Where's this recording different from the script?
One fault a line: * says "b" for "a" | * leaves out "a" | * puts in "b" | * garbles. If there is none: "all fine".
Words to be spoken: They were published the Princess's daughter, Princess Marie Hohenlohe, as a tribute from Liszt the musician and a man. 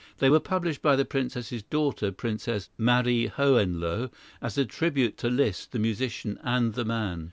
* puts in "by"
* says "to" for "from"
* says "the" for "a"